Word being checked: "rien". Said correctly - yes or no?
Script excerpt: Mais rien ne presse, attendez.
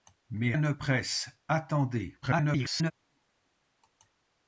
no